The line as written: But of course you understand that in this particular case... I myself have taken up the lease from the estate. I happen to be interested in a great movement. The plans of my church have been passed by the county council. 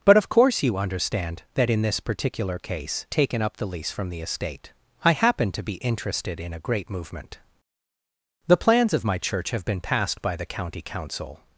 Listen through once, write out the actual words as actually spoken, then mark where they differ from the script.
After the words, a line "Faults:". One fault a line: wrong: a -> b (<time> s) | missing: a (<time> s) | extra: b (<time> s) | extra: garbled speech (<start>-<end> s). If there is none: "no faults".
But of course you understand that in this particular case... taken up the lease from the estate. I happen to be interested in a great movement. The plans of my church have been passed by the county council.
Faults:
missing: I myself have (3.0 s)